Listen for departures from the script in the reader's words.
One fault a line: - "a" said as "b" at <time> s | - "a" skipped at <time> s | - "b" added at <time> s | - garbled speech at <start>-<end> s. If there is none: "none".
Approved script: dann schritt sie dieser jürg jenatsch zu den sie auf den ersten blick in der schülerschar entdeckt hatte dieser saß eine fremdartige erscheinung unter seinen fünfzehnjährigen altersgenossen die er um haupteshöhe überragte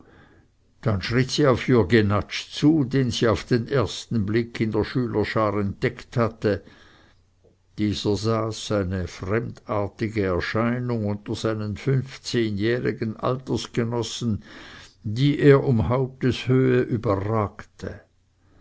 - "dieser" said as "auf" at 1.5 s